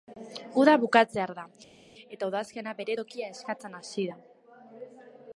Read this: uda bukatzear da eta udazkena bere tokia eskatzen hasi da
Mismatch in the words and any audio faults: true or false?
false